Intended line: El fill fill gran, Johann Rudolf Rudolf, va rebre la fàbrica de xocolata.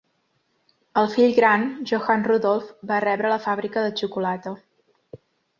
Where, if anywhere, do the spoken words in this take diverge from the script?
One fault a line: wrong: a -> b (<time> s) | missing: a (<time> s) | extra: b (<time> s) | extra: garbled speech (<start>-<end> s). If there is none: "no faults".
missing: fill (1.4 s)
missing: Rudolf (2.7 s)